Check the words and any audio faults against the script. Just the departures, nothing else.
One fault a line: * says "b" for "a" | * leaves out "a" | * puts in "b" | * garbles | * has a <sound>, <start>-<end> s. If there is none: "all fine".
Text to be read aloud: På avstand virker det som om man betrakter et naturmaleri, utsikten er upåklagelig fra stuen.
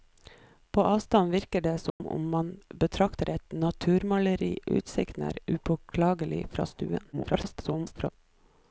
* has a dropout, 1.9-2.0 s
* garbles